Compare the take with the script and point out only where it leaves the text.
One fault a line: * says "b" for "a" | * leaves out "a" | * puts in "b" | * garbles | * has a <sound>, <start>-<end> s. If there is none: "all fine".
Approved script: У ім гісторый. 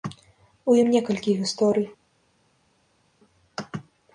* puts in "некалькі"